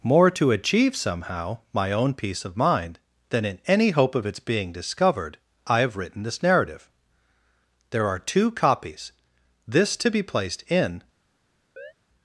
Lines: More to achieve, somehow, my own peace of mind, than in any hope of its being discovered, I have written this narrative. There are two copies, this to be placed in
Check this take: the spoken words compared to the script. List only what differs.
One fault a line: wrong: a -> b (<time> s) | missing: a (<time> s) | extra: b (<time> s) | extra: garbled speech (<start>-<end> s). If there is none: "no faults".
no faults